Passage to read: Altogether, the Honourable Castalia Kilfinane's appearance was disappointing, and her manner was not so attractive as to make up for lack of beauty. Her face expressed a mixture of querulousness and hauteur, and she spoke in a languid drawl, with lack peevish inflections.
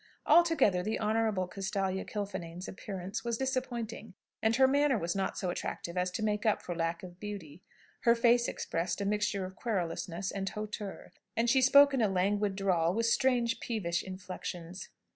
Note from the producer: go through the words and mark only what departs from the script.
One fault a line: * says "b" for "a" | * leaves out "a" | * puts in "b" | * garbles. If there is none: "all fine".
* says "strange" for "lack"